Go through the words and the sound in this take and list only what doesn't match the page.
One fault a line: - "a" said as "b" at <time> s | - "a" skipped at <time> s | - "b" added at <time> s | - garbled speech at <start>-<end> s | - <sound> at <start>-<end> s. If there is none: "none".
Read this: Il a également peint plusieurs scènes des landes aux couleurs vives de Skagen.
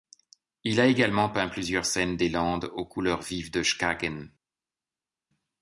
none